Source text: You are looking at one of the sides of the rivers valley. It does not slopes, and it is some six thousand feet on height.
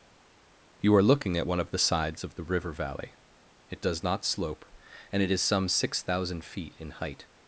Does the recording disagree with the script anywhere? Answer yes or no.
yes